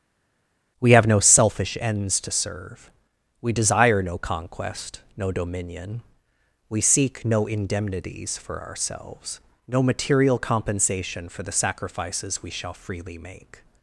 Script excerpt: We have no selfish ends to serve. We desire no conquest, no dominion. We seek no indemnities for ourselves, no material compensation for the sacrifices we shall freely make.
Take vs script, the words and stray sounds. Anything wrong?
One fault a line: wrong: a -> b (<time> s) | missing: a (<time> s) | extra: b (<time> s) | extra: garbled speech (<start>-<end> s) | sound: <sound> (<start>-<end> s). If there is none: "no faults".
no faults